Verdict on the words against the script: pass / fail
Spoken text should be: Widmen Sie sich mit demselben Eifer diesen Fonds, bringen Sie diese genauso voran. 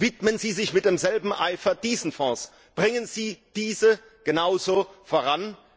pass